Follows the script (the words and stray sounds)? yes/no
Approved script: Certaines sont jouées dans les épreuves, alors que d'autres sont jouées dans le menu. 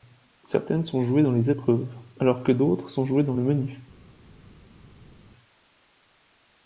yes